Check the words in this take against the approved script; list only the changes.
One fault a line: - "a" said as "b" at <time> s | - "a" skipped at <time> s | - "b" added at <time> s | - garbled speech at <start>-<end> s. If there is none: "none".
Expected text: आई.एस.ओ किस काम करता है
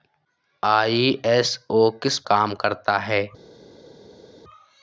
none